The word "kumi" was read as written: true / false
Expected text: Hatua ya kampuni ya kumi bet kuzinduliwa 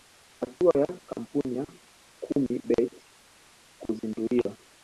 true